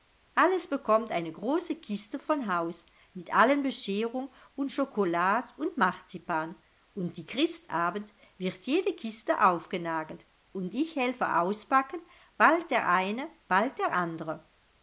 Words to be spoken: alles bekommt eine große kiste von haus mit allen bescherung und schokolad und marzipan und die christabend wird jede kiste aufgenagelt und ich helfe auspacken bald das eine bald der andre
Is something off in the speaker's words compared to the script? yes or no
yes